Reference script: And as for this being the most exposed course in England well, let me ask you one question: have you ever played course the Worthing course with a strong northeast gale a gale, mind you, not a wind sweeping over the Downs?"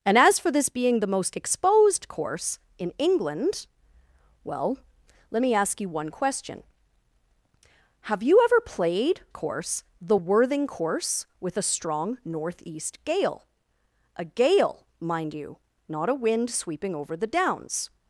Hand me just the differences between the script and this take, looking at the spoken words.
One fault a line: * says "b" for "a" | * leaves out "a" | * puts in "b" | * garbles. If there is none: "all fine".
all fine